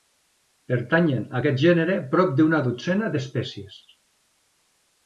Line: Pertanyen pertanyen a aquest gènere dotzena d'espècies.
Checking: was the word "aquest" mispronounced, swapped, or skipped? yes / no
no